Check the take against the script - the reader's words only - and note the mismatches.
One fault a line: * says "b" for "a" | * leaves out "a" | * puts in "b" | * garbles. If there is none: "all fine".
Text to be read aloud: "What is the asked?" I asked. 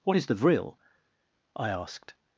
* says "vril" for "asked"